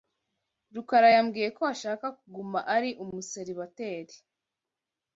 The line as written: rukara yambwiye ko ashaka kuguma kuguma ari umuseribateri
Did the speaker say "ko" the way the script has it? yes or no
yes